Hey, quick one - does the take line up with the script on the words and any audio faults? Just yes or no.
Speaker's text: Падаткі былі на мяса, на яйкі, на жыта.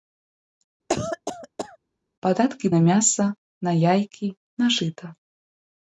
no